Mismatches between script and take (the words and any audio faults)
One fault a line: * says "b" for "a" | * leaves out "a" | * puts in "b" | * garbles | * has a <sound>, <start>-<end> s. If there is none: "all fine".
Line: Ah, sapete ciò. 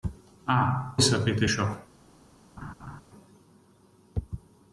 * has a laugh, 2.6-3.0 s